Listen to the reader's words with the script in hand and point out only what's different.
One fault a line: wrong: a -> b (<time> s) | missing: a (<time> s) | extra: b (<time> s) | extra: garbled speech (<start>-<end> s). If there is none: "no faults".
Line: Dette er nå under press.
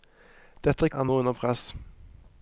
no faults